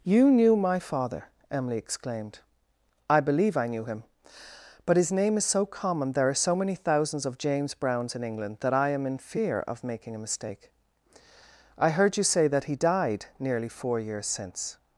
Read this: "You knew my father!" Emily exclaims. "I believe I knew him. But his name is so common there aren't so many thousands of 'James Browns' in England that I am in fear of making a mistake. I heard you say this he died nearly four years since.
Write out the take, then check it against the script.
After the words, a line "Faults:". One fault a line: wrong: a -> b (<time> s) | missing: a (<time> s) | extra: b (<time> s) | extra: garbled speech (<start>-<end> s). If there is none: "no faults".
"You knew my father!" Emily exclaimed. "I believe I knew him. But his name is so common there are so many thousands of 'James Browns' in England that I am in fear of making a mistake. I heard you say that he died nearly four years since.
Faults:
wrong: exclaims -> exclaimed (1.8 s)
wrong: aren't -> are (6.3 s)
wrong: this -> that (12.5 s)